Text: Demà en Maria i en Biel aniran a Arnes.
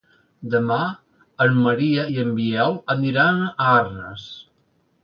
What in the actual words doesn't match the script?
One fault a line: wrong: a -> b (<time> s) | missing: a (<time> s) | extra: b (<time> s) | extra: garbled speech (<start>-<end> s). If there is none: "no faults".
no faults